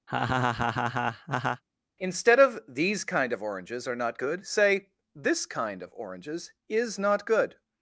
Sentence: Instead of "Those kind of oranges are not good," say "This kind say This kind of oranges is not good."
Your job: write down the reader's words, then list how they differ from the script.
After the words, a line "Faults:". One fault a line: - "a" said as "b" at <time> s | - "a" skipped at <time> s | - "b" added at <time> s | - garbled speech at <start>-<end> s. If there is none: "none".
Instead of "These kind of oranges are not good," say "This kind of oranges is not good."
Faults:
- "Those" said as "These" at 2.6 s
- "say This kind" skipped at 5.8 s